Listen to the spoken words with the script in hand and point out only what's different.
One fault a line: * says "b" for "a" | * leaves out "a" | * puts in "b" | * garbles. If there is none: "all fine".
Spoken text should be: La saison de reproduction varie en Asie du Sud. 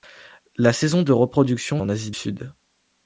* leaves out "varie"
* leaves out "du"